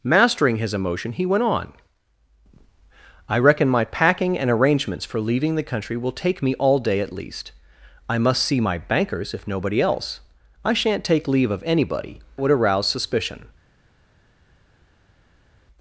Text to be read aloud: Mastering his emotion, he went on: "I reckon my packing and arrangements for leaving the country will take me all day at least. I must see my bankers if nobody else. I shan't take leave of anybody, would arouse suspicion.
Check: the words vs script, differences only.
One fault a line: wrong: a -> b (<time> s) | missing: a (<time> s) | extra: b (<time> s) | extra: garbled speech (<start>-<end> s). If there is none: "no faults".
no faults